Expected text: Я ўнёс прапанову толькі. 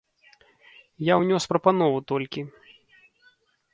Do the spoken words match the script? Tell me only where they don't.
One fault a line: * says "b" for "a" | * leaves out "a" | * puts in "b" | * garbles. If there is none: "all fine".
all fine